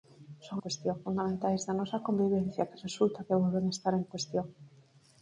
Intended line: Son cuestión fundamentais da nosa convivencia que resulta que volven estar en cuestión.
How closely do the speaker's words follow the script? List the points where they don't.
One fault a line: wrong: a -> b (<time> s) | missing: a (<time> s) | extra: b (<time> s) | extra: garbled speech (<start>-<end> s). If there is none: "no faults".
no faults